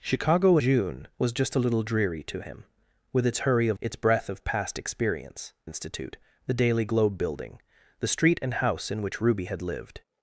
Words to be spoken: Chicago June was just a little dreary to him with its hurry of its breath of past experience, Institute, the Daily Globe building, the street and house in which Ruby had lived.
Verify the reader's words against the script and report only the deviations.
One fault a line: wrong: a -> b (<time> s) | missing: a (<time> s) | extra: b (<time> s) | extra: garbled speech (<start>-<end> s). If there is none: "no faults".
no faults